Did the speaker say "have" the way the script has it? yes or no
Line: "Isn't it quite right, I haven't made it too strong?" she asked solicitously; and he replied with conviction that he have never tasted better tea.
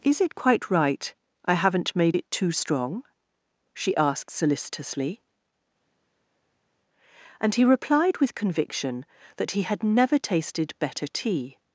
no